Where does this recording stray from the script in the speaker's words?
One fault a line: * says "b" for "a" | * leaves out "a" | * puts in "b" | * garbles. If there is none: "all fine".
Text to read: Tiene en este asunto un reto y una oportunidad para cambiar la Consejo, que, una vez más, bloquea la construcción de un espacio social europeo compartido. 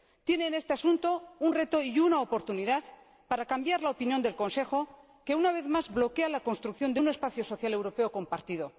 * puts in "opinión del"